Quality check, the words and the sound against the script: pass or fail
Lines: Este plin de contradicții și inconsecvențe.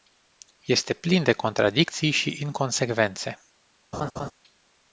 fail